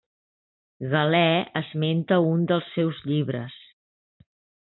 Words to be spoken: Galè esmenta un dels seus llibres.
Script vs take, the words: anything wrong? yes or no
no